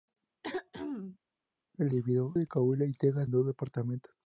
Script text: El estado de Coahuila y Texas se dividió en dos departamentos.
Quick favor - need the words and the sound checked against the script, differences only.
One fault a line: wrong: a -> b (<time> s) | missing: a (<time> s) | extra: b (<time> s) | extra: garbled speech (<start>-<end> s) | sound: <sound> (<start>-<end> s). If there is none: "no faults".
sound: throat clearing (0.4-1.2 s)
wrong: estado -> dividió (1.9 s)
missing: se dividió en (3.3 s)